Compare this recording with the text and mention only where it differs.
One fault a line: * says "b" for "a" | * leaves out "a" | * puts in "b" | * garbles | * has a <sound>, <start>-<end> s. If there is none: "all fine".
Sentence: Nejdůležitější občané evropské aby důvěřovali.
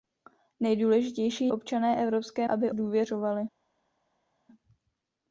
all fine